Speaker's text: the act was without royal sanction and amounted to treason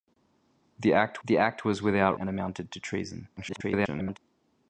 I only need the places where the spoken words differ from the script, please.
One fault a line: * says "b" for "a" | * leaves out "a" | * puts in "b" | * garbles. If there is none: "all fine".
* puts in "the act"
* leaves out "royal sanction"
* garbles